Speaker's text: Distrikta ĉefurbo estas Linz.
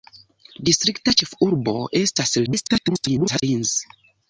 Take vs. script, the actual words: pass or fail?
fail